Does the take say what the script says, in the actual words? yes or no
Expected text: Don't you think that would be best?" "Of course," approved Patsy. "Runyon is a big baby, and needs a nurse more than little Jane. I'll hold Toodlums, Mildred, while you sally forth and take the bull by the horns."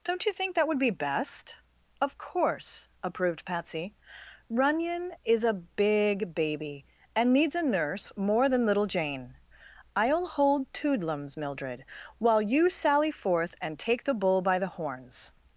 yes